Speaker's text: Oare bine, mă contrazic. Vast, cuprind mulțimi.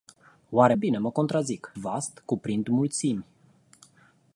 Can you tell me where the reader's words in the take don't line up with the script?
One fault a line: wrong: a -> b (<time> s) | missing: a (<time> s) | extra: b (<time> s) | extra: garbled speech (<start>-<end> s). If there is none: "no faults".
no faults